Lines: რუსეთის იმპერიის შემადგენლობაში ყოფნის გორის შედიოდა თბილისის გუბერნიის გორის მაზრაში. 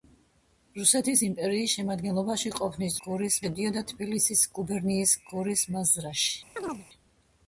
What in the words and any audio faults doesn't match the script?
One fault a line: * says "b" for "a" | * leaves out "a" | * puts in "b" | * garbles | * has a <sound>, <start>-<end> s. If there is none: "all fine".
* has a chirp, 6.6-6.9 s